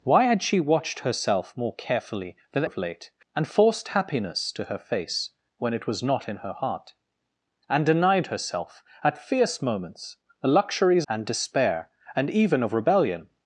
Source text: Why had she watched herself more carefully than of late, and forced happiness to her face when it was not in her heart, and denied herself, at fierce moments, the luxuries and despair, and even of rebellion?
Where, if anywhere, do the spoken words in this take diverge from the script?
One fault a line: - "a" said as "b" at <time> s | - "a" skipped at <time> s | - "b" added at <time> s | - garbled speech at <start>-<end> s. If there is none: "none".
none